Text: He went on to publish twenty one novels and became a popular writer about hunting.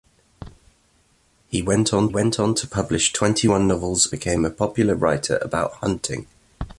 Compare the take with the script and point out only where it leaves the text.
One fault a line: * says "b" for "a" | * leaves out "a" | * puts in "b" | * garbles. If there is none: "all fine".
* puts in "went on"
* leaves out "and"